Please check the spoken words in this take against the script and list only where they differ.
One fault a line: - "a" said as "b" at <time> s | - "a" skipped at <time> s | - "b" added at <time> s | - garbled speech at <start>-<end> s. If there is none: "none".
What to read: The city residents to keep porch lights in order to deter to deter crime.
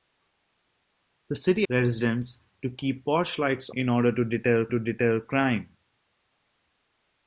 none